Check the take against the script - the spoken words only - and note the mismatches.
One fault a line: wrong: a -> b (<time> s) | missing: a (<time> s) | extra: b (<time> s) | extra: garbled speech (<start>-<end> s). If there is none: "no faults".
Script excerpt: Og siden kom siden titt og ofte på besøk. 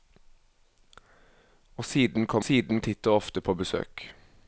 no faults